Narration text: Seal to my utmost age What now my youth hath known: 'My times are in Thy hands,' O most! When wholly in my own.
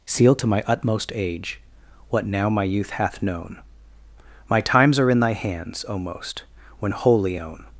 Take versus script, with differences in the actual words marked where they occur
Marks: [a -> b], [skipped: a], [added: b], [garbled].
Seal to my utmost age What now my youth hath known: 'My times are in Thy hands,' O most! When wholly [skipped: in my] own.